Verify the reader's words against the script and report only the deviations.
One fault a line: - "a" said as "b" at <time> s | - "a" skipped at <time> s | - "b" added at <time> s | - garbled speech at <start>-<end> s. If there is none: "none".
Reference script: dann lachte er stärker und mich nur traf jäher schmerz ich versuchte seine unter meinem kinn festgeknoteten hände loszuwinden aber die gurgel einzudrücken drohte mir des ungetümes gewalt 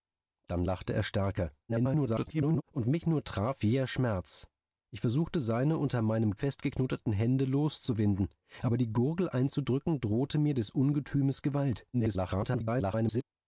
- garbled speech at 1.7-2.6 s
- "kinn" skipped at 6.4 s
- garbled speech at 11.9-13.2 s